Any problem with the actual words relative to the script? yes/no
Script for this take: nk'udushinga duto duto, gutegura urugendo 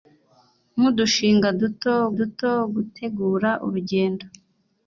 no